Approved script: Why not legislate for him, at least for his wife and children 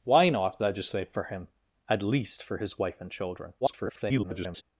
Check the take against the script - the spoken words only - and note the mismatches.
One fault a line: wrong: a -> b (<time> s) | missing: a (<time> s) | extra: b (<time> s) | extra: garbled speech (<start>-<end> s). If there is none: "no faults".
extra: garbled speech (3.6-4.6 s)